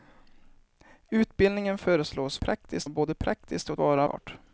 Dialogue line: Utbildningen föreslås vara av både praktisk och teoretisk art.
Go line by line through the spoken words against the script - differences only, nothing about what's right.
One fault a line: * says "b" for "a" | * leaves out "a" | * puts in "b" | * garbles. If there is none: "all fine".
* says "praktisk" for "vara"
* says "vara" for "teoretisk"